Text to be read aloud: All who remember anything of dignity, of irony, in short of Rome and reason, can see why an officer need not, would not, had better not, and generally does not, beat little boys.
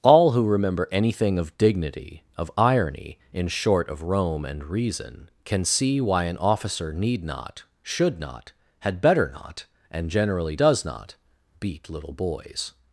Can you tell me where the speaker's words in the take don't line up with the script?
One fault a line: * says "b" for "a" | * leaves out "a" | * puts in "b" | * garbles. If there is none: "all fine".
* says "should" for "would"